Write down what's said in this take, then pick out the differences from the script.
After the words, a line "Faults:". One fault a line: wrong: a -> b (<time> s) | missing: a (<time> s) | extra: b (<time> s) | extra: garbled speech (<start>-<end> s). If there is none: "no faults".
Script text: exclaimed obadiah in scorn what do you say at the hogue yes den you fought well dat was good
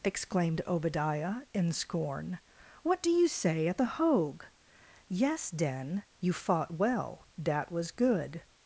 exclaimed obadiah in scorn what do you say at the hogue yes den you fought well dat was good
Faults:
no faults